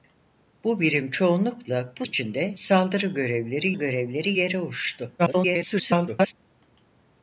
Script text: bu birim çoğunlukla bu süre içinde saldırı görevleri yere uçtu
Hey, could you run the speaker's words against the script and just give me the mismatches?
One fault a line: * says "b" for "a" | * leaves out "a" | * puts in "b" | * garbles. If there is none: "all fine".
* leaves out "süre"
* puts in "görevleri"
* garbles